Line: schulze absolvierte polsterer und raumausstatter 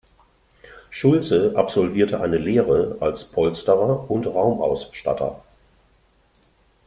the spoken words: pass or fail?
fail